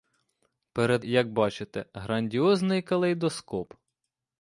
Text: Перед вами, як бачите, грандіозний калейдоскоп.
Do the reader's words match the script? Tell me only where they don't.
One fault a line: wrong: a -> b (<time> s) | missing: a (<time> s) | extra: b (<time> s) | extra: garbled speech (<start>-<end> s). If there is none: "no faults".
missing: вами (1.1 s)